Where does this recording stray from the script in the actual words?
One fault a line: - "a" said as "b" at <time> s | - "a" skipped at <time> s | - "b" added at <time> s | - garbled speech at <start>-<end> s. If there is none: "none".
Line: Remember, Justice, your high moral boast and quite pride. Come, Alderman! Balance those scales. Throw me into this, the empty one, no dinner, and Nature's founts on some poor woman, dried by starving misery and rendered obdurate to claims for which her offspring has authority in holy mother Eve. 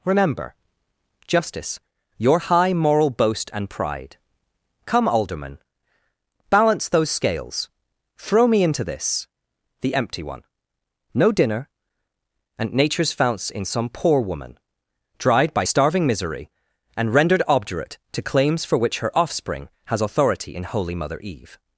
- "quite" skipped at 3.7 s
- "on" said as "in" at 13.5 s